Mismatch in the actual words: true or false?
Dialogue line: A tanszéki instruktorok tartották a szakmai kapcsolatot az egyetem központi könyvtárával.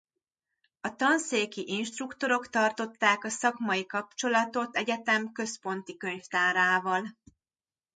true